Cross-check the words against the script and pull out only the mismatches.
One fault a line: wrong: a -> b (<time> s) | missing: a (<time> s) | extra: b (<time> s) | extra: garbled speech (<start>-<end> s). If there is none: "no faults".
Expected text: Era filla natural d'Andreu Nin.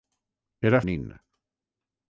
missing: filla natural d'Andreu (0.8 s)